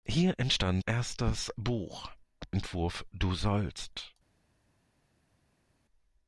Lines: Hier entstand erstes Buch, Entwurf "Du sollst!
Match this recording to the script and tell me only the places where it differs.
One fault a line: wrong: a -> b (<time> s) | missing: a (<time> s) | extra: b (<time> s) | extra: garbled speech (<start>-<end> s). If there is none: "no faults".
no faults